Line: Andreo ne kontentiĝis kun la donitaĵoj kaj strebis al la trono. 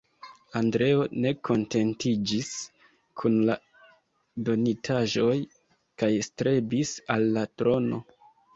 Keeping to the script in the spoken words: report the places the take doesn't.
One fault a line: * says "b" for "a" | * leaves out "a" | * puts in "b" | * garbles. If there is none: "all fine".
all fine